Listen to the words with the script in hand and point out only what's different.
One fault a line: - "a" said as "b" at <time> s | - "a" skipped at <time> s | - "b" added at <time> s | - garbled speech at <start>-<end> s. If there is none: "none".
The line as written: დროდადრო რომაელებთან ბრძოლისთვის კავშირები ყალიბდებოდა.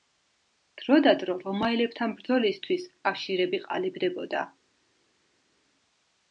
none